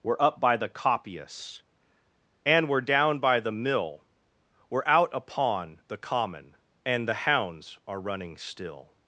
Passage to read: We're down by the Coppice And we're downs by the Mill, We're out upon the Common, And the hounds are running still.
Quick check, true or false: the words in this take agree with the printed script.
false